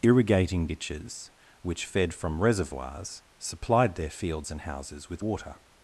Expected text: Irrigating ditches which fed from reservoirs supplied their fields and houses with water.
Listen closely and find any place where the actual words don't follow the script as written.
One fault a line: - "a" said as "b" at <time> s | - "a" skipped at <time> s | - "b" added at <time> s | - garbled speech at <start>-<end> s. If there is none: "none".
none